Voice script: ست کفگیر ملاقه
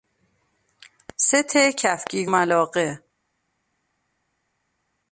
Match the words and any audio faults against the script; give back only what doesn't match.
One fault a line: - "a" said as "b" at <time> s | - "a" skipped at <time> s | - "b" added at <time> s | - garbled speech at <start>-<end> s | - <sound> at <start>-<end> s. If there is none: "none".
none